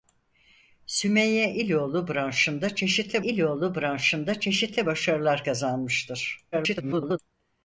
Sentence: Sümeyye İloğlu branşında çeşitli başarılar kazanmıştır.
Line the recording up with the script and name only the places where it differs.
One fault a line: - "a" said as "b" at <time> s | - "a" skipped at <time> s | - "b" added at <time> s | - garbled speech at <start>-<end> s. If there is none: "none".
- "İloğlu branşında çeşitli" added at 3.2 s
- garbled speech at 6.5-7.2 s